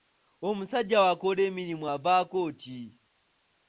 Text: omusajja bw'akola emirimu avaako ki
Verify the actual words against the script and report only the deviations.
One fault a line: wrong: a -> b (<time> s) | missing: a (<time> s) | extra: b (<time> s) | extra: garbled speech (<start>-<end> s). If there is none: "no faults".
no faults